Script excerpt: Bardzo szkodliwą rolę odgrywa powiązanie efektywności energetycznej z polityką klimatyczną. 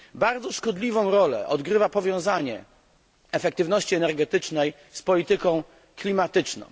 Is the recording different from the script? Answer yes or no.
no